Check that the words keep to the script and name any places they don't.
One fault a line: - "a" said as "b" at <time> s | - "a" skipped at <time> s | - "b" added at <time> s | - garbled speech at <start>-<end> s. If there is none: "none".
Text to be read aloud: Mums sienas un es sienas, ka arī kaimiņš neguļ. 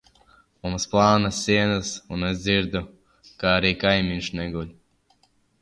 - "plānas" added at 0.9 s
- "sienas" said as "dzirdu" at 2.5 s